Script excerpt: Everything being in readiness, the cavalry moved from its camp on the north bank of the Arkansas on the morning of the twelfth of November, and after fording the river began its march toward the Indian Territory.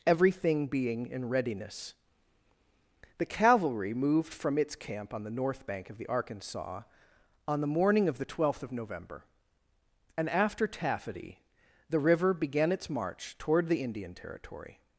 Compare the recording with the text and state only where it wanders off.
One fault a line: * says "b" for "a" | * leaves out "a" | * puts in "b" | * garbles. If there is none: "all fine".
* says "taffety" for "fording"